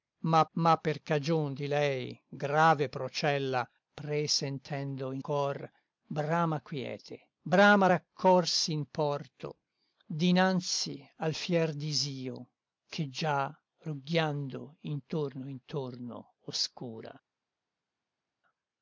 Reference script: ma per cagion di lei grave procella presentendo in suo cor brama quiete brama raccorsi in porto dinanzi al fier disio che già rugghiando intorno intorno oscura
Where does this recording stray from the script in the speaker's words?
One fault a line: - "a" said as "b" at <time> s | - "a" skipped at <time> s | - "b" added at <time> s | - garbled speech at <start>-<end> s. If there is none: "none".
- "ma" added at 0.5 s
- "suo" skipped at 5.2 s